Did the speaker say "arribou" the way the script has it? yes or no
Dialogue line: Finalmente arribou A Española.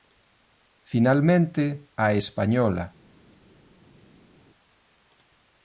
no